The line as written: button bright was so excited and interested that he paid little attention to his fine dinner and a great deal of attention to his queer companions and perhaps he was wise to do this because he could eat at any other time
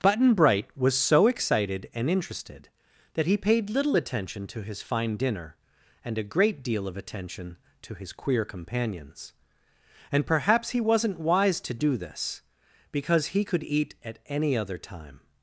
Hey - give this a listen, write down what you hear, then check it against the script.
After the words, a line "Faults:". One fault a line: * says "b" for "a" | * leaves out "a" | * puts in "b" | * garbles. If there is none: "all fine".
button bright was so excited and interested that he paid little attention to his fine dinner and a great deal of attention to his queer companions and perhaps he wasn't wise to do this because he could eat at any other time
Faults:
* says "wasn't" for "was"